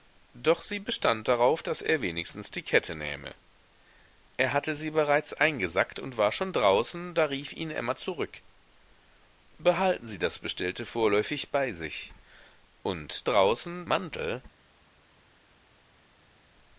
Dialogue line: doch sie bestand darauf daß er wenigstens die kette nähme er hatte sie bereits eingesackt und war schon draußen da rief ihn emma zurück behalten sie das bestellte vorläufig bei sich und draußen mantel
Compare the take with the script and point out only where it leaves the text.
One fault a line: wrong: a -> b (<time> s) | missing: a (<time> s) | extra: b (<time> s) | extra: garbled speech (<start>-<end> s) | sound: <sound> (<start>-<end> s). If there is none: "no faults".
no faults